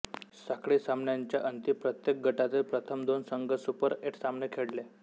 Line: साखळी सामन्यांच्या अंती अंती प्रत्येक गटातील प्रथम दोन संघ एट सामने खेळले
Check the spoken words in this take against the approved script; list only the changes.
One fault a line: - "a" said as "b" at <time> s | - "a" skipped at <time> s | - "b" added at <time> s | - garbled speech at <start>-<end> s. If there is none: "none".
- "अंती" skipped at 1.7 s
- "सुपर" added at 3.5 s